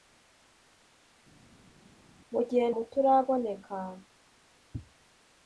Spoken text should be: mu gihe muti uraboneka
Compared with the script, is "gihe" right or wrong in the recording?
right